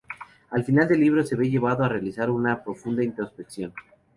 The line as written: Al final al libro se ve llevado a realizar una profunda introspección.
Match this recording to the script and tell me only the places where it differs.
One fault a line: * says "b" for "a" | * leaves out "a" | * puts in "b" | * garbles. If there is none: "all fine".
* says "del" for "al"